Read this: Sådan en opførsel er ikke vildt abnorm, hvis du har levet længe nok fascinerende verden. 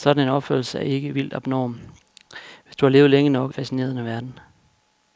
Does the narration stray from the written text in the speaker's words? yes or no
no